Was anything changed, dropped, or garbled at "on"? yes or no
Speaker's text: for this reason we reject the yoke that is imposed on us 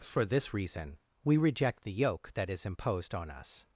no